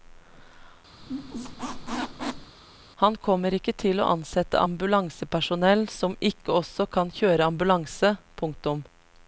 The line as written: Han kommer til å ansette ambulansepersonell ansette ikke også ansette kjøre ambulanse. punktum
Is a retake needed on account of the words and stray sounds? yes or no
yes